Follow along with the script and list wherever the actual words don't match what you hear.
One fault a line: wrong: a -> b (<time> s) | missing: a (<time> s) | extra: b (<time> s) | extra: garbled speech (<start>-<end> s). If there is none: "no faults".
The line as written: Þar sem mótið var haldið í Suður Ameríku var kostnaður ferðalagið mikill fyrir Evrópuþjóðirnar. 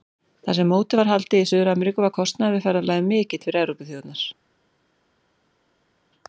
extra: við (2.6 s)